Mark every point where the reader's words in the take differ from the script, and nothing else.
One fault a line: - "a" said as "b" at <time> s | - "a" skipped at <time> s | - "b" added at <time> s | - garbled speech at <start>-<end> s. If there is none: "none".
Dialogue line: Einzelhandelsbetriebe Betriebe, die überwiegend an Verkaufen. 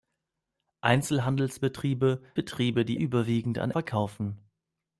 none